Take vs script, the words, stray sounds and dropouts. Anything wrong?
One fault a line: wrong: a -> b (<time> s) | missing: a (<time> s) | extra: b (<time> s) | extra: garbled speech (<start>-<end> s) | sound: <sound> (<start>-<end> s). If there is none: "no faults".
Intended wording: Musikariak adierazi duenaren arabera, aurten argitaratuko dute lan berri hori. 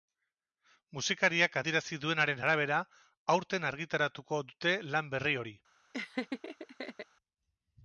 sound: laugh (5.9-7.1 s)